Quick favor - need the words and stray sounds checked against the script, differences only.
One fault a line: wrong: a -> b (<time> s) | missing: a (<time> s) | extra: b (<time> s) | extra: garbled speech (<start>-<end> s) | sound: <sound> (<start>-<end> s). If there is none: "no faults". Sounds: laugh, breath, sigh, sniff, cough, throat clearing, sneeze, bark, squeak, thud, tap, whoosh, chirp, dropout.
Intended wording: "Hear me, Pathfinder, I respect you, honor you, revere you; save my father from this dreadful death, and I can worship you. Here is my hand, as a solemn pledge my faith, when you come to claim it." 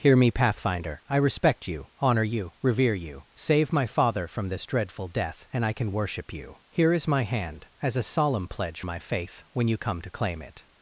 no faults